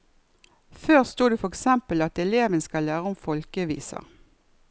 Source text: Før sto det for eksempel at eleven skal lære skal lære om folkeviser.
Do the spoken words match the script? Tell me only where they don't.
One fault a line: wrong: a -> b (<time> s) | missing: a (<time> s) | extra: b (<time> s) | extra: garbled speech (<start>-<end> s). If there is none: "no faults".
missing: skal lære (3.1 s)